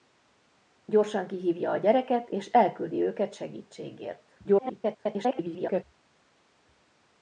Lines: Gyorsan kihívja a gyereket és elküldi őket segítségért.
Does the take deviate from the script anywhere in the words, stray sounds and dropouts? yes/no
yes